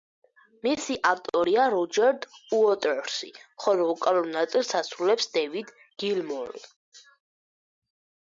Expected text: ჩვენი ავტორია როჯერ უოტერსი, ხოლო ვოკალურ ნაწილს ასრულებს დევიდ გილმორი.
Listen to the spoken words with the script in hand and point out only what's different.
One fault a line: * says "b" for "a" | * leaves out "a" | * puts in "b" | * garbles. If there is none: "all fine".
* says "მისი" for "ჩვენი"